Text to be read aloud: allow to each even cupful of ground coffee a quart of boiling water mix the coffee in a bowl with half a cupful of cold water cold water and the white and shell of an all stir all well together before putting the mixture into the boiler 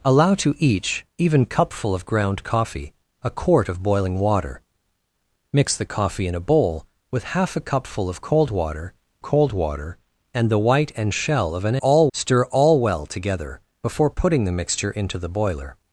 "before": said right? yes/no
yes